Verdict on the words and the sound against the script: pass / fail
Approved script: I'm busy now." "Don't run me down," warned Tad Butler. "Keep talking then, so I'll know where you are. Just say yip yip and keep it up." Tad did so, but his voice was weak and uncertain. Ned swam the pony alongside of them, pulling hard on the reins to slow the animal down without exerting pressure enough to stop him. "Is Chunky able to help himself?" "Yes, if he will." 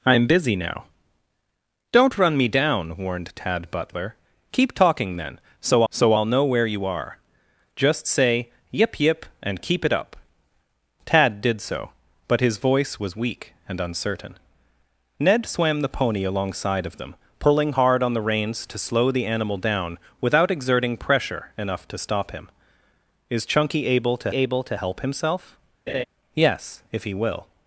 fail